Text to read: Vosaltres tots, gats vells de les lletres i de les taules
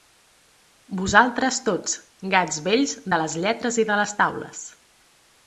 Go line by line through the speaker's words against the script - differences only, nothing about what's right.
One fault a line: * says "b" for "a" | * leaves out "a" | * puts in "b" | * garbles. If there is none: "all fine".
all fine